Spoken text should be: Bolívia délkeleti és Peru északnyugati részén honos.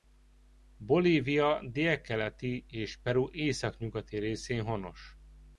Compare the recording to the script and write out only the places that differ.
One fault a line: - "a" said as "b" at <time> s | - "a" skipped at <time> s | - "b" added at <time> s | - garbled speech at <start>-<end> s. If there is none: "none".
none